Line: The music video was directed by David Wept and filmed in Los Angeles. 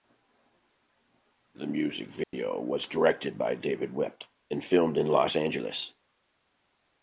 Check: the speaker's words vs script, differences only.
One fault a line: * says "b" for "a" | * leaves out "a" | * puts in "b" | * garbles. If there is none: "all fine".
all fine